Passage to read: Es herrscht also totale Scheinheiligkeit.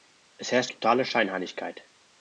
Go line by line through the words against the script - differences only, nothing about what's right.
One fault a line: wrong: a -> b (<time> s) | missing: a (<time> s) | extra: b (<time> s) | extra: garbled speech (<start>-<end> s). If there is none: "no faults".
missing: also (0.7 s)